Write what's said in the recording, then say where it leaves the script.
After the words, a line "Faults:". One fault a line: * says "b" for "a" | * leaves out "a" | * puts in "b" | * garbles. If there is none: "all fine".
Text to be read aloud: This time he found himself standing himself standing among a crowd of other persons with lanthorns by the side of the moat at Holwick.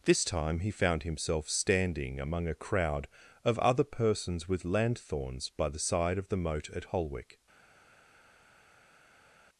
This time he found himself standing among a crowd of other persons with lanthorns by the side of the moat at Holwick.
Faults:
* leaves out "himself standing"